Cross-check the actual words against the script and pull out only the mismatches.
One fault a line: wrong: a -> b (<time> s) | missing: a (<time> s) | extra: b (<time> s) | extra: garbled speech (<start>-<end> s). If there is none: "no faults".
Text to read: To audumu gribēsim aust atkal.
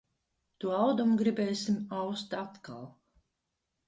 no faults